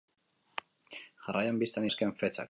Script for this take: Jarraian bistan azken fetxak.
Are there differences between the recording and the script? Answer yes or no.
no